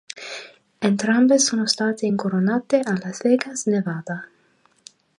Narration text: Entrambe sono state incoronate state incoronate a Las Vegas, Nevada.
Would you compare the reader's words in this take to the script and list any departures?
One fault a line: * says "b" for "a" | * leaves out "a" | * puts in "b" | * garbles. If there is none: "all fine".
* leaves out "state incoronate"